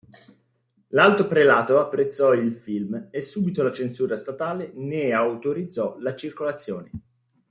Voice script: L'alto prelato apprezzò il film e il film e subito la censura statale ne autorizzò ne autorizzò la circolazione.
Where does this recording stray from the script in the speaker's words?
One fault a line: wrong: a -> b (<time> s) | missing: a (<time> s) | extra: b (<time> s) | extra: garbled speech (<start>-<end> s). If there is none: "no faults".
missing: il film e (3.2 s)
missing: ne autorizzò (6.0 s)